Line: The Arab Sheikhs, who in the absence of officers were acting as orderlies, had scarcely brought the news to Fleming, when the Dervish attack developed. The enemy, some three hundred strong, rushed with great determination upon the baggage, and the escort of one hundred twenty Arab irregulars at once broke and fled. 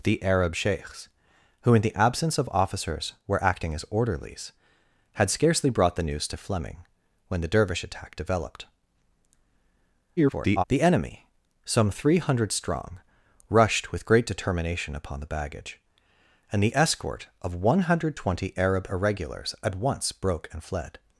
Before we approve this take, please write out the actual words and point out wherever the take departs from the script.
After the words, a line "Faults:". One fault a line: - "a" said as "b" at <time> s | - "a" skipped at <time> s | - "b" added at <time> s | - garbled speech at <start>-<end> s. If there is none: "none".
The Arab Sheikhs, who in the absence of officers were acting as orderlies, had scarcely brought the news to Fleming, when the Dervish attack developed. [garbled] The enemy, some three hundred strong, rushed with great determination upon the baggage, and the escort of one hundred twenty Arab irregulars at once broke and fled.
Faults:
- garbled speech at 10.2-10.6 s